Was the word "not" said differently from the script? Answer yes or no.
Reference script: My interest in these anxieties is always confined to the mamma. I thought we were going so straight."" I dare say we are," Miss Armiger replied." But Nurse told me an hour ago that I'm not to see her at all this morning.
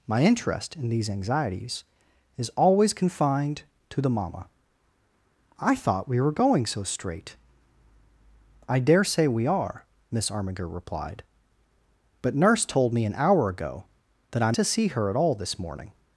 yes